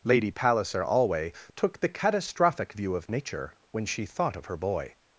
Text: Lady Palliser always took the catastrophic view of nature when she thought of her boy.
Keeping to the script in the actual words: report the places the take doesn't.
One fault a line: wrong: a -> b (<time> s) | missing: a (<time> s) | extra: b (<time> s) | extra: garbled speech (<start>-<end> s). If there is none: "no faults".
wrong: always -> alway (0.8 s)